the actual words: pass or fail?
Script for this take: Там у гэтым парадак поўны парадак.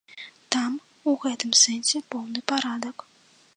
fail